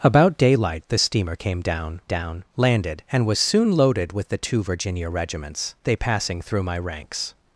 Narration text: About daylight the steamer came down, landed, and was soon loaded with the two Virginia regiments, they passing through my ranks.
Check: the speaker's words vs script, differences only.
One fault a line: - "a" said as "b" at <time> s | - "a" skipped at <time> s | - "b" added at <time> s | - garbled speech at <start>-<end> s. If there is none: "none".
- "down" added at 2.0 s